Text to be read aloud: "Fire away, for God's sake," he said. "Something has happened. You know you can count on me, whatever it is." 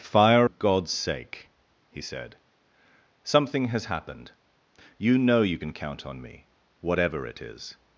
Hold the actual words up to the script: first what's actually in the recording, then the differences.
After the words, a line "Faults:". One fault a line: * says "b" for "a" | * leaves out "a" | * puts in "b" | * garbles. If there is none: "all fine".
"Fire God's sake," he said. "Something has happened. You know you can count on me, whatever it is."
Faults:
* leaves out "away for"